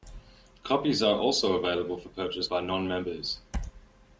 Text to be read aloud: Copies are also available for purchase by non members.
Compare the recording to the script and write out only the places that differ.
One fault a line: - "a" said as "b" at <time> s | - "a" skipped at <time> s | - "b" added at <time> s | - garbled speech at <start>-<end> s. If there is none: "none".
none